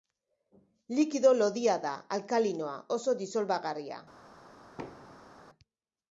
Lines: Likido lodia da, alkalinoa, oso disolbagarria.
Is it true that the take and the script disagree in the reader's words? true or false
false